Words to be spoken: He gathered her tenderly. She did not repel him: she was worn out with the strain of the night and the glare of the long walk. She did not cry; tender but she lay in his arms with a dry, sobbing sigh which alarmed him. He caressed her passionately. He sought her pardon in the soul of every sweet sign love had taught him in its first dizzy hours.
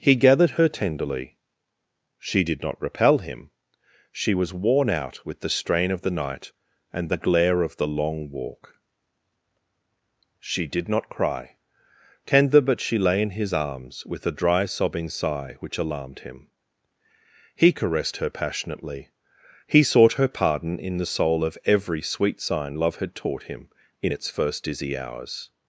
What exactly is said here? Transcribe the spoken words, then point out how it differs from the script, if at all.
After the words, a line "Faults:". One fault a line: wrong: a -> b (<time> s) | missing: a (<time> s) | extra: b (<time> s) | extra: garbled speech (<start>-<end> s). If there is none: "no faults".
He gathered her tenderly. She did not repel him: she was worn out with the strain of the night and the glare of the long walk. She did not cry; tender but she lay in his arms with a dry, sobbing sigh which alarmed him. He caressed her passionately. He sought her pardon in the soul of every sweet sign love had taught him in its first dizzy hours.
Faults:
no faults